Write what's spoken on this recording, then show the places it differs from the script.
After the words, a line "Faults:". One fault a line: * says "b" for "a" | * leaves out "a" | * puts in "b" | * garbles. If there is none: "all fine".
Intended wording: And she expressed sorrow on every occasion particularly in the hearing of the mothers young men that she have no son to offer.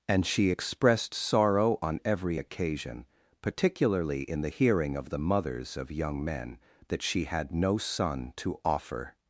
And she expressed sorrow on every occasion particularly in the hearing of the mothers of young men that she had no son to offer.
Faults:
* puts in "of"
* says "had" for "have"